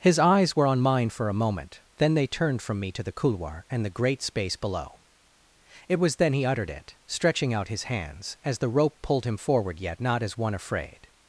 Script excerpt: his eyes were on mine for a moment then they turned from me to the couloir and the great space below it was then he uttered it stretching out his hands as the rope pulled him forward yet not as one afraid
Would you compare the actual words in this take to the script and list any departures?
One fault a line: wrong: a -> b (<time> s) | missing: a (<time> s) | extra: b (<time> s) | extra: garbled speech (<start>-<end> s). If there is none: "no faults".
no faults